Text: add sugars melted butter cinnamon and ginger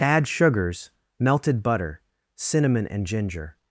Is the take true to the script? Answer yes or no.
yes